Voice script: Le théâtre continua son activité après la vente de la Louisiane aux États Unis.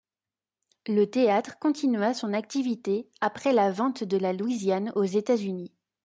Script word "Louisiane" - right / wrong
right